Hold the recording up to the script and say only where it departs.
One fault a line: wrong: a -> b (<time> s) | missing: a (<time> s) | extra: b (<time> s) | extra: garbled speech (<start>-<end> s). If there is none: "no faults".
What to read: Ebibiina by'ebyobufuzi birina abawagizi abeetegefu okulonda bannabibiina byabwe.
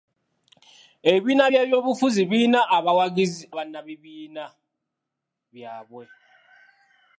missing: abeetegefu okulonda (3.4 s)